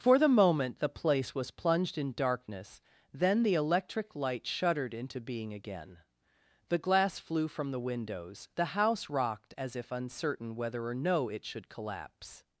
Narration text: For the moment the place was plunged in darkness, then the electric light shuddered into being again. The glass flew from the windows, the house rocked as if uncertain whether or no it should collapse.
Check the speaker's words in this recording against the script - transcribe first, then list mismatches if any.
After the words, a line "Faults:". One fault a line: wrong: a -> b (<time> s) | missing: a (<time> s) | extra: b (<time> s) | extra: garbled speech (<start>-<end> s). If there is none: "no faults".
For the moment the place was plunged in darkness, then the electric light shuddered into being again. The glass flew from the windows, the house rocked as if uncertain whether or no it should collapse.
Faults:
no faults